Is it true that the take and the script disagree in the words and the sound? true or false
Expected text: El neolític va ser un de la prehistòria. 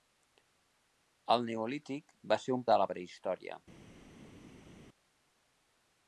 false